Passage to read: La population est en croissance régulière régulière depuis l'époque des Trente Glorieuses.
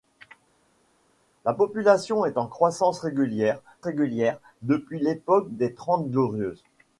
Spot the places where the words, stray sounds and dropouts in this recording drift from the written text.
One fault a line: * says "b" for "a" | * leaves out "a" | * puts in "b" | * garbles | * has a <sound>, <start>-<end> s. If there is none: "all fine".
all fine